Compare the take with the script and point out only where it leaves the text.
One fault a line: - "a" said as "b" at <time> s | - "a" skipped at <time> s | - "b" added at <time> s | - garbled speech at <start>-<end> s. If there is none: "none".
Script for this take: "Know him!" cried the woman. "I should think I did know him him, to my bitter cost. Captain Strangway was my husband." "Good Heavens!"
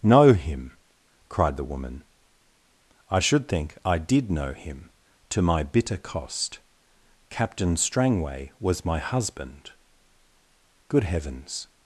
- "him" skipped at 4.9 s